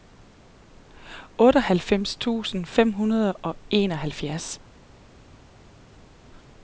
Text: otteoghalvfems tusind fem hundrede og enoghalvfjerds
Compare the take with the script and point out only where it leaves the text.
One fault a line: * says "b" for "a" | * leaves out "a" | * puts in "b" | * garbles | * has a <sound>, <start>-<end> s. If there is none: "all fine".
all fine